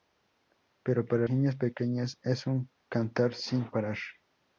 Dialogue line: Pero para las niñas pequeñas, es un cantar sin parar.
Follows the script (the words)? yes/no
no